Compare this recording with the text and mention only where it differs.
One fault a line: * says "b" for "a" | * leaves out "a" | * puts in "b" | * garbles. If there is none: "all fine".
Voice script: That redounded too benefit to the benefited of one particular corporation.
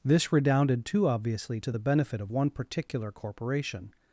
* says "This" for "That"
* says "obviously" for "benefit"
* says "benefit" for "benefited"